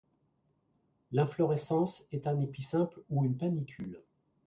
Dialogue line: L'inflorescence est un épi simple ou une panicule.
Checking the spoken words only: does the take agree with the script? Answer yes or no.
yes